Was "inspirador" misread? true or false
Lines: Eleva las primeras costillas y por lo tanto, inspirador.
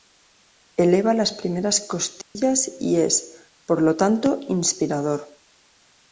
false